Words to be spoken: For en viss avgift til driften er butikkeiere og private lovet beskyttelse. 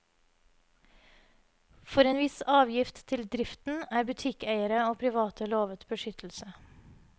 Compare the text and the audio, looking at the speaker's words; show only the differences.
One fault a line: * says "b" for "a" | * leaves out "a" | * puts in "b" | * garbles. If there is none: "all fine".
all fine